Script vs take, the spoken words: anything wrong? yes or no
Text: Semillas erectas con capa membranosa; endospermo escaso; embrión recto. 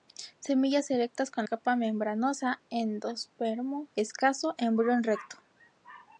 no